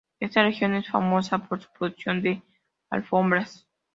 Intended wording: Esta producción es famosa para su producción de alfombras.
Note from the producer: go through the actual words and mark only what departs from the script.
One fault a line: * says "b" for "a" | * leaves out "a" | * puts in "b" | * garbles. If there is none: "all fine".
* says "región" for "producción"
* says "por" for "para"